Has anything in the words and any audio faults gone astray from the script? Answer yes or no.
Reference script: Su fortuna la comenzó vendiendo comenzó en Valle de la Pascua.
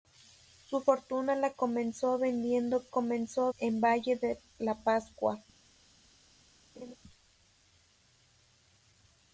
yes